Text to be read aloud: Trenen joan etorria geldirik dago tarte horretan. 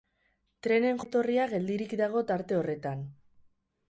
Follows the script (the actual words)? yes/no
no